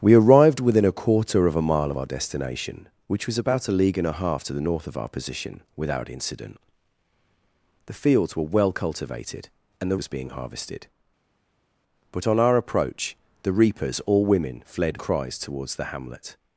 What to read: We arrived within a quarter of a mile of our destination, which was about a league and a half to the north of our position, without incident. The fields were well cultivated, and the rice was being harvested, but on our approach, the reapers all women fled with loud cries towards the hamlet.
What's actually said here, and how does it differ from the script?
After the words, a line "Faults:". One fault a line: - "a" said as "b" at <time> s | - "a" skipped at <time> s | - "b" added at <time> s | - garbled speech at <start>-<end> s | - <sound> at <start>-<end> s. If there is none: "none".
We arrived within a quarter of a mile of our destination, which was about a league and a half to the north of our position, without incident. The fields were well cultivated, and the was being harvested, but on our approach, the reapers all women fled cries towards the hamlet.
Faults:
- "rice" skipped at 10.0 s
- "with loud" skipped at 15.0 s